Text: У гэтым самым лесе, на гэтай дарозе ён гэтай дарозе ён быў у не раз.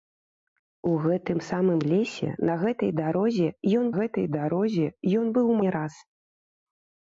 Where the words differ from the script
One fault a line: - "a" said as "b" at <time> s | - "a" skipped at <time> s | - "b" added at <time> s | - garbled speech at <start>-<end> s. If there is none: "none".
none